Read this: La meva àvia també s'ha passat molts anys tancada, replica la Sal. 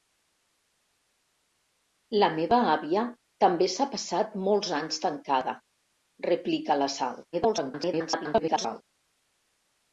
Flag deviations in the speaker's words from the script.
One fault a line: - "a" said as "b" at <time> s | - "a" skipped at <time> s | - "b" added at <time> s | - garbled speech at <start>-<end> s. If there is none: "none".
- garbled speech at 7.3-8.8 s